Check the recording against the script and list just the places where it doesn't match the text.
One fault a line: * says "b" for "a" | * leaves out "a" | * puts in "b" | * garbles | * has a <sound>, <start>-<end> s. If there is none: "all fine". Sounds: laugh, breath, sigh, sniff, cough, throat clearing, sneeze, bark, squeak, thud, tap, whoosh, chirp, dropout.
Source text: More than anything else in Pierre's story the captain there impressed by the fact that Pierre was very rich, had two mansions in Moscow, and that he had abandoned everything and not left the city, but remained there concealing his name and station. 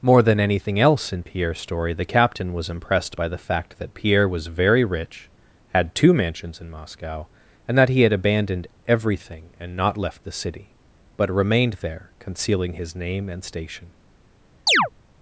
* says "was" for "there"
* has a chirp, 14.7-14.9 s